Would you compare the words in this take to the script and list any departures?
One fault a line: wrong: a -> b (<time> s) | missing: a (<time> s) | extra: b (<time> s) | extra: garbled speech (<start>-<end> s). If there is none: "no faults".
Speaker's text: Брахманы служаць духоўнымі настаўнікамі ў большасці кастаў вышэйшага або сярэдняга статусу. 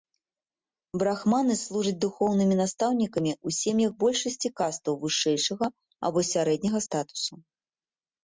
extra: сем'ях (3.6 s)